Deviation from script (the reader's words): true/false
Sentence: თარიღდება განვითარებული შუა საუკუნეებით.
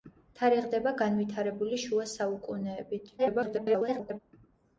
true